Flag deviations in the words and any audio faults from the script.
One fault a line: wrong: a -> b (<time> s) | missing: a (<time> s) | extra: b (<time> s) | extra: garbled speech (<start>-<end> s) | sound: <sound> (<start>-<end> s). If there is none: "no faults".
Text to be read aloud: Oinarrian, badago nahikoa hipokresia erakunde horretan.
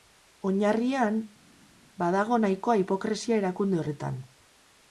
no faults